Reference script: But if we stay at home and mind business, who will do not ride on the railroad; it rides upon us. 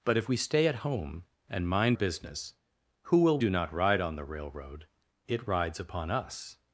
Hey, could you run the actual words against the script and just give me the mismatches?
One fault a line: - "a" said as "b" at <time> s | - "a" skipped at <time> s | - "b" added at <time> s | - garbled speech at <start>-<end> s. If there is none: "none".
none